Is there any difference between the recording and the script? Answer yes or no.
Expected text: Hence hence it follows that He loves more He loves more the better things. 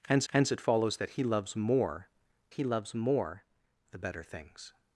no